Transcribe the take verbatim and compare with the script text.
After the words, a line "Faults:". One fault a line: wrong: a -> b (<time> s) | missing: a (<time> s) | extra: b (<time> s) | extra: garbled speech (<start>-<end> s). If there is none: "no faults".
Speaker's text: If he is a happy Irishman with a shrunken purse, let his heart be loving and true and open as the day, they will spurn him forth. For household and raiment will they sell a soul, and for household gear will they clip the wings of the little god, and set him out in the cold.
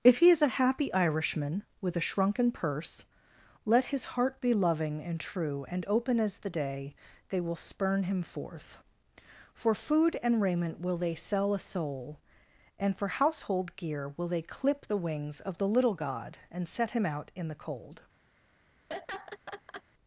If he is a happy Irishman with a shrunken purse, let his heart be loving and true and open as the day, they will spurn him forth. For food and raiment will they sell a soul, and for household gear will they clip the wings of the little god, and set him out in the cold.
Faults:
wrong: household -> food (9.8 s)